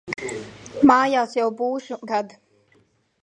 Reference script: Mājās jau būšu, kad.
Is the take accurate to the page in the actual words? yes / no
yes